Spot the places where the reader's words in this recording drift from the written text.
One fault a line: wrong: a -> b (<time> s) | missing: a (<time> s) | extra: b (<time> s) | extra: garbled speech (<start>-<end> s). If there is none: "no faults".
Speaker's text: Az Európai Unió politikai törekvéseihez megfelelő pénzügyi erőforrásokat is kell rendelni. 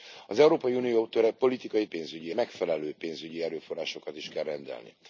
wrong: törekvéseihez -> pénzügyi (1.8 s)